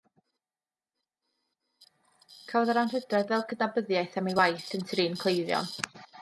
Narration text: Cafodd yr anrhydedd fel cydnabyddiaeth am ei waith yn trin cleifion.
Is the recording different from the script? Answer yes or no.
no